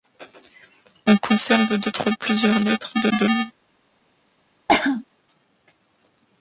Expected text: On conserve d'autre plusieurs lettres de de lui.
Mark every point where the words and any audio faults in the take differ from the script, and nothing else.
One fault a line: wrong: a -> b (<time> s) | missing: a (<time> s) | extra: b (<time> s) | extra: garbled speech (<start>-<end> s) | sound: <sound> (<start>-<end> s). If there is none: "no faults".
sound: cough (4.7-5.0 s)